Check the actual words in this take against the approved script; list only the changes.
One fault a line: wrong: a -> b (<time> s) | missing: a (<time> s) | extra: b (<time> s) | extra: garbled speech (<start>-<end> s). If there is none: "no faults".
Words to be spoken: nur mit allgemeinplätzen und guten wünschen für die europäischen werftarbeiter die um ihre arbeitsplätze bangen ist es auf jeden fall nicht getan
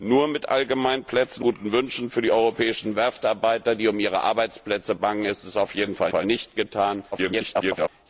missing: und (1.4 s)
extra: fall (6.1 s)
extra: garbled speech (7.1-7.9 s)